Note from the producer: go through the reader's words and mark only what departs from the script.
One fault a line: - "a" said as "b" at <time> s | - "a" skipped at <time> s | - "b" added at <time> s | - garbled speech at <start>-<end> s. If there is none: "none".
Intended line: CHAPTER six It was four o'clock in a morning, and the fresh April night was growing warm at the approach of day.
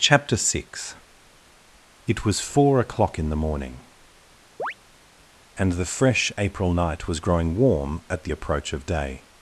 - "a" said as "the" at 3.3 s